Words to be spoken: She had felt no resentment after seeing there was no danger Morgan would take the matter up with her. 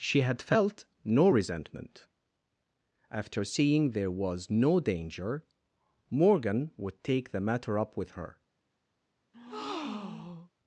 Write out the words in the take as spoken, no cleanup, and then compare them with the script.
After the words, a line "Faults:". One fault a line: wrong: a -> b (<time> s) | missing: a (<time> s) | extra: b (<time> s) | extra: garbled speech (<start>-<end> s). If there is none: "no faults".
She had felt no resentment after seeing there was no danger Morgan would take the matter up with her.
Faults:
no faults